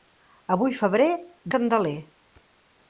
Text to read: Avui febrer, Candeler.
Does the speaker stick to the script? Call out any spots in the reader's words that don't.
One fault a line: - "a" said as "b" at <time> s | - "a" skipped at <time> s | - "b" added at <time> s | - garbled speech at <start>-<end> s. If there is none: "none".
none